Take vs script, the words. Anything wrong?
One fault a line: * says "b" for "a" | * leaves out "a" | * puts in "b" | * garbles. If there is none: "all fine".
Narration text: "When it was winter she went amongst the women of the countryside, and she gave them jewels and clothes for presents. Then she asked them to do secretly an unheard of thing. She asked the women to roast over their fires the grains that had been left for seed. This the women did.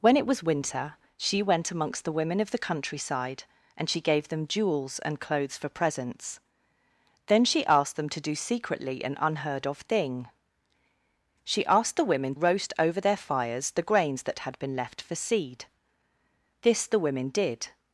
* leaves out "to"